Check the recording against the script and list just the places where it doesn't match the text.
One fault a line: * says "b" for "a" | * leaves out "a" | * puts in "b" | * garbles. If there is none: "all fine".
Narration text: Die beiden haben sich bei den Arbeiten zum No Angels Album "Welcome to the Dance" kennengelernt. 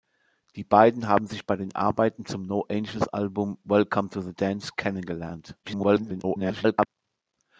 * garbles